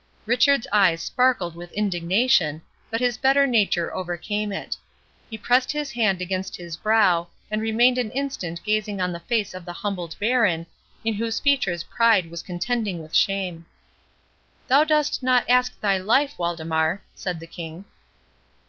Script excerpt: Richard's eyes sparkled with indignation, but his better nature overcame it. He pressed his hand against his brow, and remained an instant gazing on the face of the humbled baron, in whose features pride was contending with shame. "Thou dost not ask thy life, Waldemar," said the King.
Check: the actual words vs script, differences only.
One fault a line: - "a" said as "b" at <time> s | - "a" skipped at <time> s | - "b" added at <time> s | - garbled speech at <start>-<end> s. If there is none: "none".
none